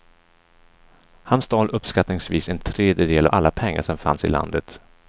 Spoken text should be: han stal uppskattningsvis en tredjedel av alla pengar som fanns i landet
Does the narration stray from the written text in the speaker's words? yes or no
yes